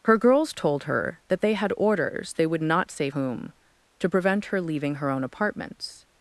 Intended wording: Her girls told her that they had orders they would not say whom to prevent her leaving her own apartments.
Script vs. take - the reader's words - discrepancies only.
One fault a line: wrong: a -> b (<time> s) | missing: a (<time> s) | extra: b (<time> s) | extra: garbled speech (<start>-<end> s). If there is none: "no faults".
no faults